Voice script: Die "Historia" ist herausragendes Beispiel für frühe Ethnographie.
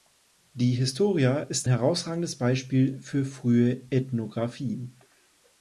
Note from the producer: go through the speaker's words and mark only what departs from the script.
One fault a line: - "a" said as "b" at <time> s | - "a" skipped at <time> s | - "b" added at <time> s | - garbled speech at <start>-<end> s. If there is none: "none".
none